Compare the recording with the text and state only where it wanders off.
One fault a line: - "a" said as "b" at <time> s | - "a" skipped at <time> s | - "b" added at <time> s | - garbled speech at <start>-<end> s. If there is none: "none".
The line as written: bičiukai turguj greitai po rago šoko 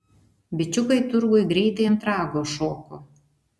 - "po" said as "ant" at 1.9 s